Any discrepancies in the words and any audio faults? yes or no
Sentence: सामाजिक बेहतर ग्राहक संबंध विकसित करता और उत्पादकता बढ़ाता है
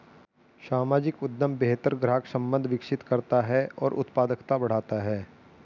yes